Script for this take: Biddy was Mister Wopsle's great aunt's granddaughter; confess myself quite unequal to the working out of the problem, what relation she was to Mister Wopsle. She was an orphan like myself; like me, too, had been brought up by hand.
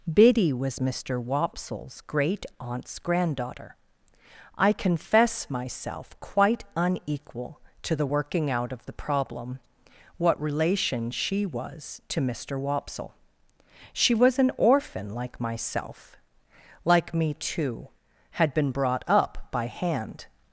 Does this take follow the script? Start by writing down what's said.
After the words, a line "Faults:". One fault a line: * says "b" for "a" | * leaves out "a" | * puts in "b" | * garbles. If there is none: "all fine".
Biddy was Mister Wopsle's great aunt's granddaughter; I confess myself quite unequal to the working out of the problem, what relation she was to Mister Wopsle. She was an orphan like myself; like me, too, had been brought up by hand.
Faults:
* puts in "I"